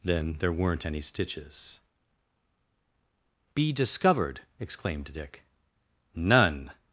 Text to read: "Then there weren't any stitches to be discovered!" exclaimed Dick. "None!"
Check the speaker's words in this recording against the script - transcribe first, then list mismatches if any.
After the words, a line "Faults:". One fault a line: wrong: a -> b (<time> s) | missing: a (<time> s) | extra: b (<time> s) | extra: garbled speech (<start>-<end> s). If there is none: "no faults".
"Then there weren't any stitches be discovered!" exclaimed Dick. "None!"
Faults:
missing: to (1.8 s)